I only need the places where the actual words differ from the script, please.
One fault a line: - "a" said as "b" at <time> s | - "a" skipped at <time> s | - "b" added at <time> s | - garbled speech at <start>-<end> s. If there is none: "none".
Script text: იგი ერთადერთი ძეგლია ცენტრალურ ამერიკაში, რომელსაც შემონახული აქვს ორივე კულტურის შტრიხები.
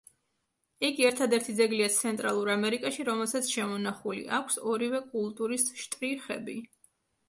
none